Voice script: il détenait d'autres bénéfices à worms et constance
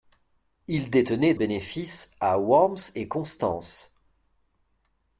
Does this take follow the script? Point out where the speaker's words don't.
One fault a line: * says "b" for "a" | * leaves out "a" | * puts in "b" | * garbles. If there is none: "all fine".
* leaves out "d'autres"